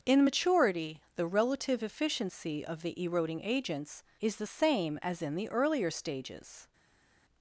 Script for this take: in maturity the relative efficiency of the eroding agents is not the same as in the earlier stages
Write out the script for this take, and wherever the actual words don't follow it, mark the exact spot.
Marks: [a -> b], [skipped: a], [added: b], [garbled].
in maturity the relative efficiency of the eroding agents is [skipped: not] the same as in the earlier stages